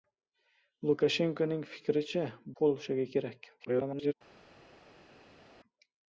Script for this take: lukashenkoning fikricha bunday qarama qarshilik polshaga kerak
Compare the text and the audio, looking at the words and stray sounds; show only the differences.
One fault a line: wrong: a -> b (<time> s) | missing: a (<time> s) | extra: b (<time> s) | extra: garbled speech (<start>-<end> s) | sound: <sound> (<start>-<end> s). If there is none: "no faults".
missing: bunday qarama qarshilik (2.2 s)
extra: garbled speech (3.6-4.1 s)